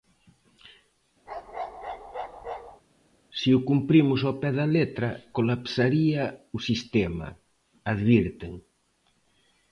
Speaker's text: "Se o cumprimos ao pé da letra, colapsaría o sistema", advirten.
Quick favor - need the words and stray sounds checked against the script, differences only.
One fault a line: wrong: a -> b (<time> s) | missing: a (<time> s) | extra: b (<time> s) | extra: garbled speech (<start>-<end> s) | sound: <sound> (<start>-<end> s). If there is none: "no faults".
sound: bark (1.3-2.8 s)